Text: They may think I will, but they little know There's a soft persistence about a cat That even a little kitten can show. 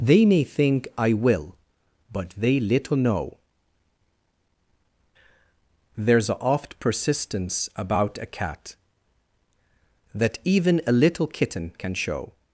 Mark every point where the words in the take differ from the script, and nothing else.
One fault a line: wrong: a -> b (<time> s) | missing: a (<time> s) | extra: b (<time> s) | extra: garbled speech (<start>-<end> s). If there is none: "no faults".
wrong: soft -> oft (6.4 s)